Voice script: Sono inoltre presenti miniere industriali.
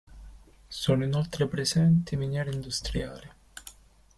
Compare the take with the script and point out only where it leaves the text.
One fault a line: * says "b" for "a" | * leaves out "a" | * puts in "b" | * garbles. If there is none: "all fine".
all fine